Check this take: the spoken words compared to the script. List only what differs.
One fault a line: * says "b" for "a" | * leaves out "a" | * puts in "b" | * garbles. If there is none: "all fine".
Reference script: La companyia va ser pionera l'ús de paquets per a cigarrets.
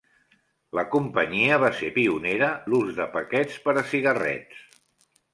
all fine